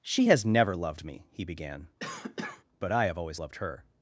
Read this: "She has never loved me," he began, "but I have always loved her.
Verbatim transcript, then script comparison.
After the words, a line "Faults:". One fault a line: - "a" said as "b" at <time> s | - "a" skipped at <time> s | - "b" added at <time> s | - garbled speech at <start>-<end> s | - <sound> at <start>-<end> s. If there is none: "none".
"She has never loved me," he began, "but I have always loved her.
Faults:
- cough at 2.0-2.6 s